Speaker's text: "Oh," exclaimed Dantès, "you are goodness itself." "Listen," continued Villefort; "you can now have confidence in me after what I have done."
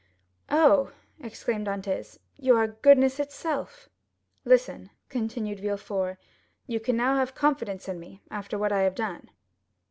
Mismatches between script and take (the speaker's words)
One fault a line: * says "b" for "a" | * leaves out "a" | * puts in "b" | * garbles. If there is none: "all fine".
all fine